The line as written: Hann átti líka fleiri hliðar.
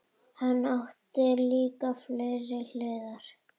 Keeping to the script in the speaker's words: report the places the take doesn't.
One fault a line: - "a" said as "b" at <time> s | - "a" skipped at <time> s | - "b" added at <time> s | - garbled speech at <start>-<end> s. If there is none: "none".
none